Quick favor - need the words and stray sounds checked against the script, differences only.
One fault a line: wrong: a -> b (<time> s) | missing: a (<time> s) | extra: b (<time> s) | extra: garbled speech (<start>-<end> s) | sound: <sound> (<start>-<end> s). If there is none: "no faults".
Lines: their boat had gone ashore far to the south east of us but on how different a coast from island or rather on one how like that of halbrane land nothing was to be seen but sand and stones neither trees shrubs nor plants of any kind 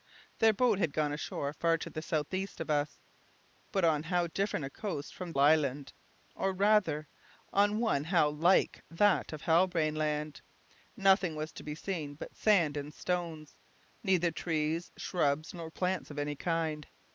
no faults